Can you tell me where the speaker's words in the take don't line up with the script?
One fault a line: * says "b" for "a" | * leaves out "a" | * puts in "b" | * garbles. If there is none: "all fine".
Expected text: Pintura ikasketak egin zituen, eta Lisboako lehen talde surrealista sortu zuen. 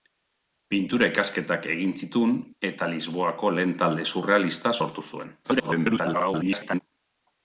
* garbles